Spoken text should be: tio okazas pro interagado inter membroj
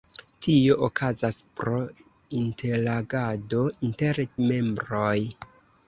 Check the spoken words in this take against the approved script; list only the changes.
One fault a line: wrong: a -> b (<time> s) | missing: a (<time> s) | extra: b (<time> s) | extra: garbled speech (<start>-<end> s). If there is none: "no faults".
no faults